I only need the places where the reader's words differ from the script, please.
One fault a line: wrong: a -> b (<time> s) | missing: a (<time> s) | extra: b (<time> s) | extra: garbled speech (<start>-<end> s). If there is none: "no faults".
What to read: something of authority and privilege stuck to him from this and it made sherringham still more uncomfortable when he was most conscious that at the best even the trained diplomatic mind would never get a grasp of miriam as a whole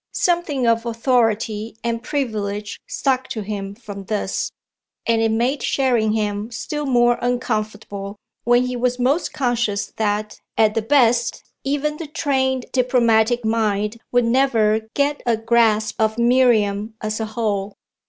no faults